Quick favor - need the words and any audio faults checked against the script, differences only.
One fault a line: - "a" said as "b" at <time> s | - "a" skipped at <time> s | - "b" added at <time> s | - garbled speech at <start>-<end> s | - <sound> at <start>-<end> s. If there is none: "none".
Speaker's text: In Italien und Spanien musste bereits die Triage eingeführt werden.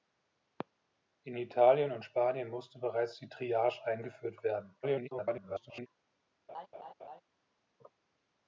- garbled speech at 4.8-5.9 s
- laugh at 6.5-7.2 s